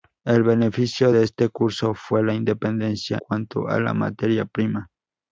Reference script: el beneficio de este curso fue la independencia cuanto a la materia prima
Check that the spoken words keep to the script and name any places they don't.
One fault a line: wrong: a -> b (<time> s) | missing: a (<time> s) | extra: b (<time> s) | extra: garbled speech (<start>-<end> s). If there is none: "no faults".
no faults